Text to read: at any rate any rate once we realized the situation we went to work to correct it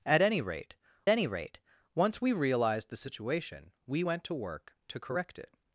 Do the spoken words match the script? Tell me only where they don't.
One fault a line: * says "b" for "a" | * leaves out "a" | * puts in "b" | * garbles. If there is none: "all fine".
all fine